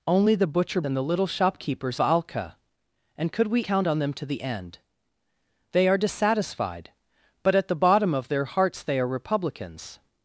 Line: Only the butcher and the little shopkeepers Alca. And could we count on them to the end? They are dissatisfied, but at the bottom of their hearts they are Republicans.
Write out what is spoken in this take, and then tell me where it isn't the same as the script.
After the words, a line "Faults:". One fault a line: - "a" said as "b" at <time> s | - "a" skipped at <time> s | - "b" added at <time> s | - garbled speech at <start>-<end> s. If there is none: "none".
Only the butcher and the little shopkeepers Alca. And could we count on them to the end? They are dissatisfied, but at the bottom of their hearts they are Republicans.
Faults:
none